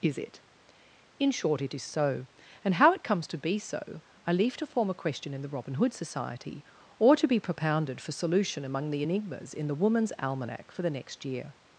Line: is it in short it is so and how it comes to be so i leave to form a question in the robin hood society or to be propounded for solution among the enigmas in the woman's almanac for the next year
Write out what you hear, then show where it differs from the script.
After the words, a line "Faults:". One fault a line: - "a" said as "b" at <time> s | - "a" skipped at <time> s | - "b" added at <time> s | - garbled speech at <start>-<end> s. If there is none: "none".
is it in short it is so and how it comes to be so i leave to form a question in the robin hood society or to be propounded for solution among the enigmas in the woman's almanac for the next year
Faults:
none